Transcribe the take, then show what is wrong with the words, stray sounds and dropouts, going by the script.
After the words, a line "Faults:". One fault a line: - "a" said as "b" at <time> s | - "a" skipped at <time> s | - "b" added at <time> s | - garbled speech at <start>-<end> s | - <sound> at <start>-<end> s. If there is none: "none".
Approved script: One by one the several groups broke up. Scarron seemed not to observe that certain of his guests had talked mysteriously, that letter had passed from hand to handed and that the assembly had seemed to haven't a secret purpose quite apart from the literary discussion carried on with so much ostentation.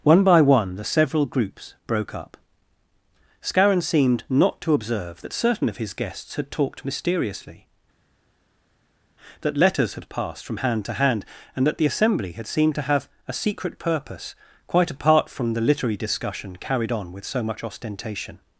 One by one the several groups broke up. Scarron seemed not to observe that certain of his guests had talked mysteriously, that letters had passed from hand to hand and that the assembly had seemed to have a secret purpose quite apart from the literary discussion carried on with so much ostentation.
Faults:
- "letter" said as "letters" at 9.6 s
- "handed" said as "hand" at 10.9 s
- "haven't" said as "have" at 12.9 s